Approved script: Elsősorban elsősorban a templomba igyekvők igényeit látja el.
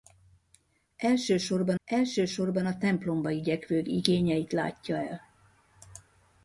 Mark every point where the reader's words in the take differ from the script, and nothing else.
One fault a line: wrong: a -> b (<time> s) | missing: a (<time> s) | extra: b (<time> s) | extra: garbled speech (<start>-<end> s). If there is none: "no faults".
no faults